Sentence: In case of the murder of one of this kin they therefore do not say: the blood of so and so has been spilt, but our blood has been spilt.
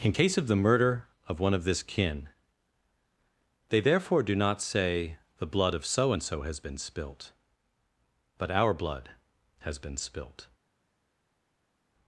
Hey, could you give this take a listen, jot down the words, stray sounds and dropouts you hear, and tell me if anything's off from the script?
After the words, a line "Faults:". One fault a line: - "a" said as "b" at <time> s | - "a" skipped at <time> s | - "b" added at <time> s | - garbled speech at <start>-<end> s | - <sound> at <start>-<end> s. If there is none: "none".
In case of the murder of one of this kin they therefore do not say: the blood of so and so has been spilt, but our blood has been spilt.
Faults:
none